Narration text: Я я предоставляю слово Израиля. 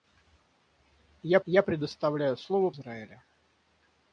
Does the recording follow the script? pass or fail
pass